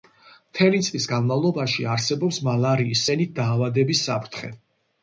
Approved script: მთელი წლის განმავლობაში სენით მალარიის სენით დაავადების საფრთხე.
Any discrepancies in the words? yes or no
yes